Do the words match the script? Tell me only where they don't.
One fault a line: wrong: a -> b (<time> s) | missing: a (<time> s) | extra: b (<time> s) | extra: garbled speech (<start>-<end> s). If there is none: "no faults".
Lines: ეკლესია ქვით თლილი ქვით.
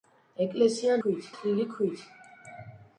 no faults